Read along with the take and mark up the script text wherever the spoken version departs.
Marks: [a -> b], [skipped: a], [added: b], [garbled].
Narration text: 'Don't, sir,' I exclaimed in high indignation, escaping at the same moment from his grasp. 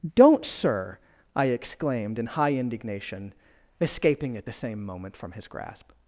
'Don't, sir,' I exclaimed in high indignation, escaping at the same moment from his grasp.